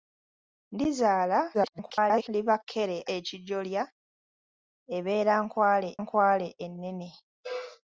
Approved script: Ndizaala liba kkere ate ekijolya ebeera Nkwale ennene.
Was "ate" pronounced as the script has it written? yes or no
no